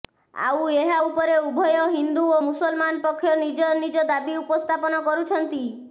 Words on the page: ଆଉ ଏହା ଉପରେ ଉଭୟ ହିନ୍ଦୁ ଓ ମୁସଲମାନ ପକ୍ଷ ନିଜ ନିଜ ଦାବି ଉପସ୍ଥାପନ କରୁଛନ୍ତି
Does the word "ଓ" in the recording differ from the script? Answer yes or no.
no